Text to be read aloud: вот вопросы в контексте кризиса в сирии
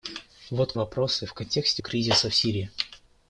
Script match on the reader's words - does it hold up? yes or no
yes